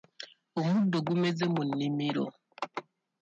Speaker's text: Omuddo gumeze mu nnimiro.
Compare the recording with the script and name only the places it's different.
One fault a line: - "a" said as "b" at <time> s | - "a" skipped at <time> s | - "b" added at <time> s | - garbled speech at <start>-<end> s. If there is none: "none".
none